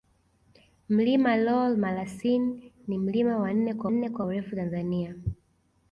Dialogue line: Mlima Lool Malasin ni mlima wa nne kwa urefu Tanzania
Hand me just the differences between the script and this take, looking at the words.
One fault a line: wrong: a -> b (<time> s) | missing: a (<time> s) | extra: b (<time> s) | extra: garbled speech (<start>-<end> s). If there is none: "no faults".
extra: nne kwa (3.9 s)